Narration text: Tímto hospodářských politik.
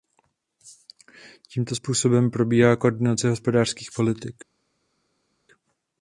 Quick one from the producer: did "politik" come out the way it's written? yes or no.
yes